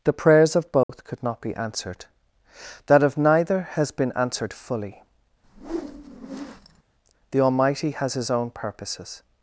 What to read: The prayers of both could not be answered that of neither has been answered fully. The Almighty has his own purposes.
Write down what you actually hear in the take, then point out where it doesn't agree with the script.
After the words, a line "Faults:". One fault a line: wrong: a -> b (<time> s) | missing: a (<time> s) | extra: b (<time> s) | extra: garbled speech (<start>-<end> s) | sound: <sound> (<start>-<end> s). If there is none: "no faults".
The prayers of both could not be answered that of neither has been answered fully. The Almighty has his own purposes.
Faults:
sound: dropout (0.8-0.9 s)
sound: whoosh (5.4-6.8 s)